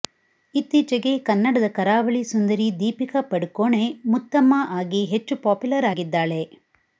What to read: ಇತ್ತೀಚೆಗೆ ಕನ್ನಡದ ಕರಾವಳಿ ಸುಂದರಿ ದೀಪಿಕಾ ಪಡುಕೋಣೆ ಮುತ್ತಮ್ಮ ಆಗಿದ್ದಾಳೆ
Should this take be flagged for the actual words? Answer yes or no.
yes